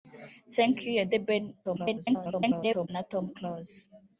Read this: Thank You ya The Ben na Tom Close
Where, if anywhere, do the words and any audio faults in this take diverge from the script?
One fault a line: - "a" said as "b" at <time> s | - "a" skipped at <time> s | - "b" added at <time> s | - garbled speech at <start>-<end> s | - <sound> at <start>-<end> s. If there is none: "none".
- garbled speech at 1.6-2.9 s